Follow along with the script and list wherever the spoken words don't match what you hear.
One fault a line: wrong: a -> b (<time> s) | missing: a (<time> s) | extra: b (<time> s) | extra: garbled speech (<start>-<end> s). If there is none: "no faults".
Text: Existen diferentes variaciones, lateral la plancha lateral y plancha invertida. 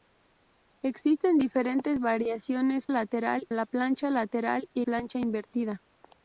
no faults